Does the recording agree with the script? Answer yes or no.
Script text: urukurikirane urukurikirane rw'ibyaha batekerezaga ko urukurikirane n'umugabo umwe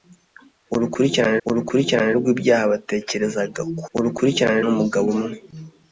yes